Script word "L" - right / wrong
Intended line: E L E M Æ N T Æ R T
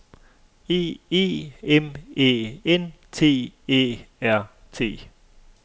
wrong